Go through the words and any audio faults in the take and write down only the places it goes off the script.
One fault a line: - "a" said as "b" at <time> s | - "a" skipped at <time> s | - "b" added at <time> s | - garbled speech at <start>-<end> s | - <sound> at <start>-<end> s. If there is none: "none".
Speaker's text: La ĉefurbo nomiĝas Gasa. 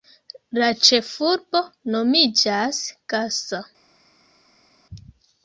none